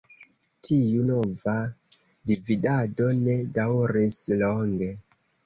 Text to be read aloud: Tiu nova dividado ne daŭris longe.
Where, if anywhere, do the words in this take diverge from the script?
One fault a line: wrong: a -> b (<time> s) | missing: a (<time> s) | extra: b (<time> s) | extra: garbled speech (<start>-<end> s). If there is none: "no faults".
no faults